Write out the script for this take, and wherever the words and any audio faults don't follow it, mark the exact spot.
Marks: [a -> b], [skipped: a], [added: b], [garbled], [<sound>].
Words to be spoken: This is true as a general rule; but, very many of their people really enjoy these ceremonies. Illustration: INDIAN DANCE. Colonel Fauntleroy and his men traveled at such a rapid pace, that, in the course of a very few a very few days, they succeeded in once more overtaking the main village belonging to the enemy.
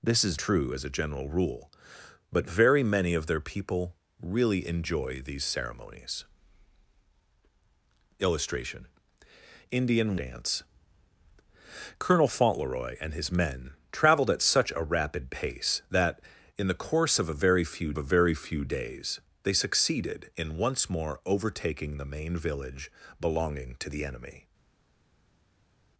This is true as a general rule; but, very many of their people really enjoy these ceremonies. Illustration: INDIAN DANCE. Colonel Fauntleroy and his men traveled at such a rapid pace, that, in the course of a very few a very few days, they succeeded in once more overtaking the main village belonging to the enemy.